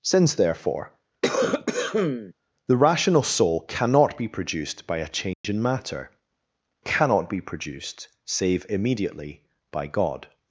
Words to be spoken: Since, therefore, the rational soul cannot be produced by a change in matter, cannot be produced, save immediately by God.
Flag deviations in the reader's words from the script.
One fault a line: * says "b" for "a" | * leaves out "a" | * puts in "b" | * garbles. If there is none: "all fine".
all fine